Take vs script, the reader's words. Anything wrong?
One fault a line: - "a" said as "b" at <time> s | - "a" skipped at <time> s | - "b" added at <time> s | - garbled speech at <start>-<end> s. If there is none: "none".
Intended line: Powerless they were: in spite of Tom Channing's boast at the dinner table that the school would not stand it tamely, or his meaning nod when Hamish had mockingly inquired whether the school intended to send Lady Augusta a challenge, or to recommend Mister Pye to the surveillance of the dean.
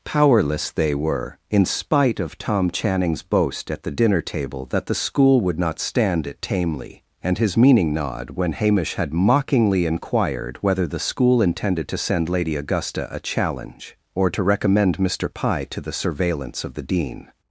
- "or" said as "and" at 7.2 s